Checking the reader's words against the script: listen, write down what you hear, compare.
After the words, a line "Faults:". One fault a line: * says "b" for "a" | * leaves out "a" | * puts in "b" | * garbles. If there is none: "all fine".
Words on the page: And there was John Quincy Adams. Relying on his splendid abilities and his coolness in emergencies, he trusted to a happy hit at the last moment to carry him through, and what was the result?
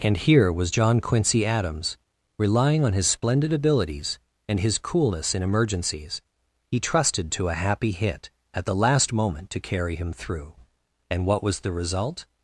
And here was John Quincy Adams. Relying on his splendid abilities and his coolness in emergencies, he trusted to a happy hit at the last moment to carry him through, and what was the result?
Faults:
* says "here" for "there"